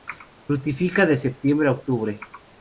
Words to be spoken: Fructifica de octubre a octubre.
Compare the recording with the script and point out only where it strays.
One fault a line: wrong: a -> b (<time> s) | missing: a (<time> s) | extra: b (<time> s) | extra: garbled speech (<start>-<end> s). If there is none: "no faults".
wrong: octubre -> septiembre (1.1 s)